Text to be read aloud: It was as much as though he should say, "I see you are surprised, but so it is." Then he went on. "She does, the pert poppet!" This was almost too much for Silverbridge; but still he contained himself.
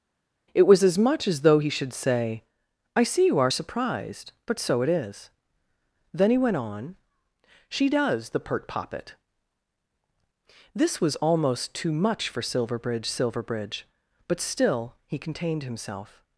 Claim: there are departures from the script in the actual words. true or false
true